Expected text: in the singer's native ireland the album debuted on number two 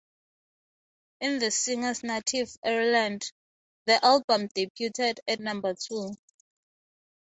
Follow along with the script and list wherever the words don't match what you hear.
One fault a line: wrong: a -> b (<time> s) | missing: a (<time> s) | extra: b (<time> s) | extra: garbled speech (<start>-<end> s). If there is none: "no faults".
wrong: on -> at (5.3 s)